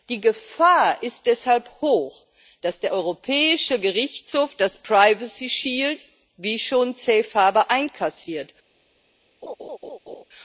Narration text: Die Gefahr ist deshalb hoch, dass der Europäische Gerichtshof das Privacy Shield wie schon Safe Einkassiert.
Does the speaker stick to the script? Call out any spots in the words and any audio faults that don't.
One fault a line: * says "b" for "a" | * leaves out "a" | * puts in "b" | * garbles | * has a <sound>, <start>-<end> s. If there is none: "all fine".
* puts in "Harbour"
* has a laugh, 9.4-10.2 s